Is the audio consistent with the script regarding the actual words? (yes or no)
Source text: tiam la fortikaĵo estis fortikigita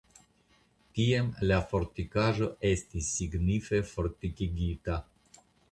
no